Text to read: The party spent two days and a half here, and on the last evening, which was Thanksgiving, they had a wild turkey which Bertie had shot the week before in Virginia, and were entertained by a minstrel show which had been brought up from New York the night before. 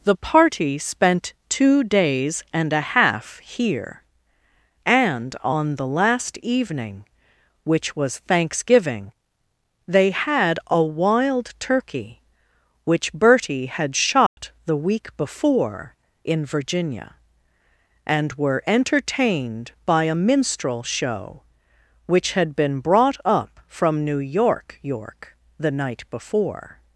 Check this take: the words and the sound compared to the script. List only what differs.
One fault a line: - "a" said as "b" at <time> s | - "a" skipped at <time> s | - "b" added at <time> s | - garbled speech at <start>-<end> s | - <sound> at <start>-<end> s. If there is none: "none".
- dropout at 14.3-14.4 s
- "York" added at 24.8 s